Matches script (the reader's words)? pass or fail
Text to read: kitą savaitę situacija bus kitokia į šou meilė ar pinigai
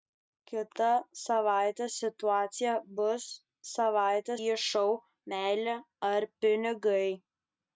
fail